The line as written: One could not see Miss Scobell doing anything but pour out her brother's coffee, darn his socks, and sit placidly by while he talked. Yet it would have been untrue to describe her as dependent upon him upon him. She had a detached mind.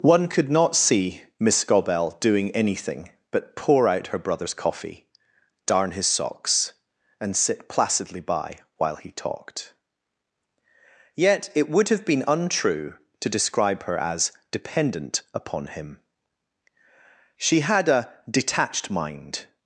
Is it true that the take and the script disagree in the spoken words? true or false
true